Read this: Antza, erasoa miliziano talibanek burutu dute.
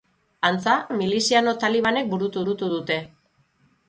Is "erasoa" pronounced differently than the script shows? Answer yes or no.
yes